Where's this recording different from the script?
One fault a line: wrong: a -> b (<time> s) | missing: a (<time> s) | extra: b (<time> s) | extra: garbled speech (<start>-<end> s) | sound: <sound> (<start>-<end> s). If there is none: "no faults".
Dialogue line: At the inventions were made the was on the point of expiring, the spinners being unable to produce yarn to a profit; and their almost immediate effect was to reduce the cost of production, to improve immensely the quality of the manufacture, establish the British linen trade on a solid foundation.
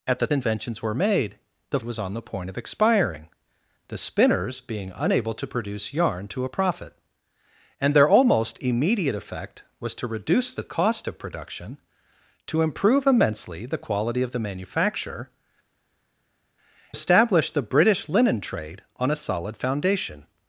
no faults